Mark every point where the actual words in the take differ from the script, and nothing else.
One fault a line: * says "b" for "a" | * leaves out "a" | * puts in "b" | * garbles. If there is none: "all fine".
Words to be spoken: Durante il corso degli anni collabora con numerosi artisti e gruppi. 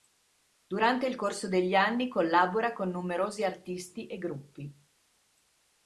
all fine